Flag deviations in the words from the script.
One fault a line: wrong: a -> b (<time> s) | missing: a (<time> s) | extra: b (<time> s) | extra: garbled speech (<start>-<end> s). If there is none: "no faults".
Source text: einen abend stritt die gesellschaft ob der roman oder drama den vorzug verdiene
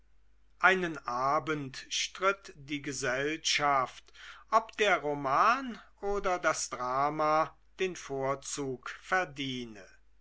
extra: das (6.4 s)